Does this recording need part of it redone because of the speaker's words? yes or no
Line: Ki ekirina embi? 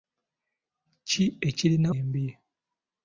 no